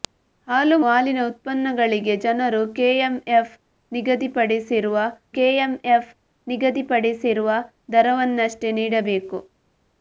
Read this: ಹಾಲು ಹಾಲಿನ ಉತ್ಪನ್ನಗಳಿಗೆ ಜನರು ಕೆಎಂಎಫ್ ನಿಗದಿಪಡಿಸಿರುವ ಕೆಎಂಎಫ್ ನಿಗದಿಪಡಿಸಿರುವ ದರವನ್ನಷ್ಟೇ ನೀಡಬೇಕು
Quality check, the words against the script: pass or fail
pass